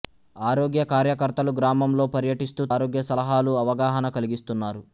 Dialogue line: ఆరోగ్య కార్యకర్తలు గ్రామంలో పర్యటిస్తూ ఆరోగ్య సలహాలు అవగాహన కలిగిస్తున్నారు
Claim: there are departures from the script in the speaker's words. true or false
false